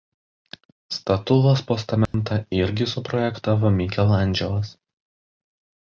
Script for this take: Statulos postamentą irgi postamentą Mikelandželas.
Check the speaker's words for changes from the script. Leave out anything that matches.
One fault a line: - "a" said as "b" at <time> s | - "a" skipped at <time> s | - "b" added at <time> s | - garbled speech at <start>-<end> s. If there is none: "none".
- "postamentą" said as "suprojektavo" at 2.9 s